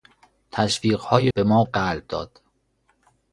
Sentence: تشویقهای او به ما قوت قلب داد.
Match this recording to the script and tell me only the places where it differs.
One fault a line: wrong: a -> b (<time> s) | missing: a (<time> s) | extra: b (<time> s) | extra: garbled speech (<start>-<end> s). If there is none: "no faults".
missing: او (1.3 s)
missing: قوت (1.6 s)